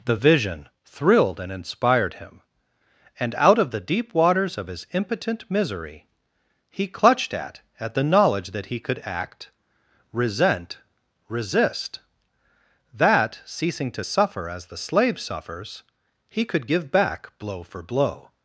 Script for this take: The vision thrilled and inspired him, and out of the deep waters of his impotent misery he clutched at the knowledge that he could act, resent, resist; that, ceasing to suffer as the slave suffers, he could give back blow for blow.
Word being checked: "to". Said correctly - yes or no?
yes